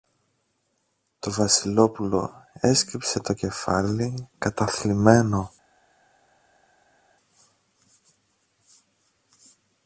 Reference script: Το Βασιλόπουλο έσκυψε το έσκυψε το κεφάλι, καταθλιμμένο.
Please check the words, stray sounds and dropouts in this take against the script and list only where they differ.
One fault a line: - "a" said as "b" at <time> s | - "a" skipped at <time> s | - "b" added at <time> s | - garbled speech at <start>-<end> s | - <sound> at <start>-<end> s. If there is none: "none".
- "έσκυψε το" skipped at 3.3 s